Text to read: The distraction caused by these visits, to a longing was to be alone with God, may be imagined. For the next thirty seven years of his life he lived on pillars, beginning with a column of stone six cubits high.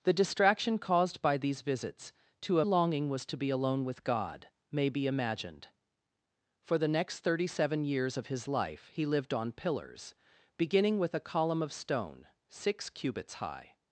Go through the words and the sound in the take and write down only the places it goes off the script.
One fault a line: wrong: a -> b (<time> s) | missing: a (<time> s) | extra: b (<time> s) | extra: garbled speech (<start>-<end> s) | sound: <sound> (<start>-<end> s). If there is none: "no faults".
no faults